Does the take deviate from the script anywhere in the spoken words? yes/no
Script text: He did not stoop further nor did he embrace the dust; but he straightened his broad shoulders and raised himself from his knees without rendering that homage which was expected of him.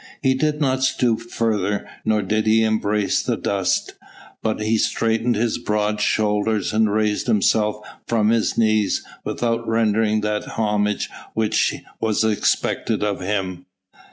no